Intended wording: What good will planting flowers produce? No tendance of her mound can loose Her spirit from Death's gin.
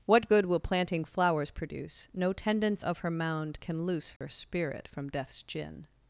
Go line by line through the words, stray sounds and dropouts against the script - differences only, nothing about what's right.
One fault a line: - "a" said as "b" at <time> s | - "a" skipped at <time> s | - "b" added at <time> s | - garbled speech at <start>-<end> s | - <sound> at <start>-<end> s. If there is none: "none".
- dropout at 4.2-4.2 s